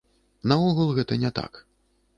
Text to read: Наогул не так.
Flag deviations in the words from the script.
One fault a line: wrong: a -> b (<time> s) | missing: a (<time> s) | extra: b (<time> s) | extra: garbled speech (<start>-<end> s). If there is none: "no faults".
extra: гэта (1.0 s)